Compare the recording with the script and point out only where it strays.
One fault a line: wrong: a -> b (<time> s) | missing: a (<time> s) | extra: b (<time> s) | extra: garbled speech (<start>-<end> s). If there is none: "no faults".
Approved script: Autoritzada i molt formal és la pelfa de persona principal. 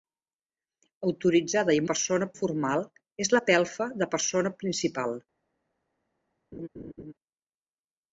wrong: molt -> persona (1.9 s)